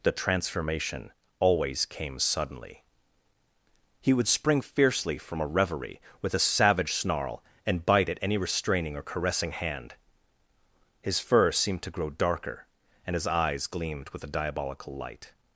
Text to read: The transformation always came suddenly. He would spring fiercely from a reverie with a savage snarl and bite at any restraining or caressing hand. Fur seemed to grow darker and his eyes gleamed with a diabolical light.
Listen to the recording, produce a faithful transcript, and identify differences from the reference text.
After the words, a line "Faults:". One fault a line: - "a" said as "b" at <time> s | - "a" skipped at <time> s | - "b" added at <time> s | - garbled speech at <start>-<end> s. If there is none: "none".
The transformation always came suddenly. He would spring fiercely from a reverie with a savage snarl and bite at any restraining or caressing hand. His fur seemed to grow darker and his eyes gleamed with a diabolical light.
Faults:
- "His" added at 11.0 s